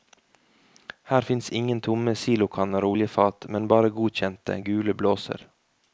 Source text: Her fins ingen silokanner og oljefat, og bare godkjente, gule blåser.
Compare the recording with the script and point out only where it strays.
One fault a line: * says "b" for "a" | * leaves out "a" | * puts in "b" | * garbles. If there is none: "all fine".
* puts in "tomme"
* says "men" for "og"